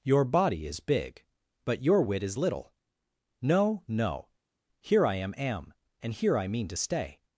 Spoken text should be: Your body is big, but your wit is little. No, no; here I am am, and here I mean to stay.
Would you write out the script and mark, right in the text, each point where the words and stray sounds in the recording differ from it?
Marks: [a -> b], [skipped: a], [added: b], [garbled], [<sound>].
Your body is big, but your wit is little. No, no; here I am am, and here I mean to stay.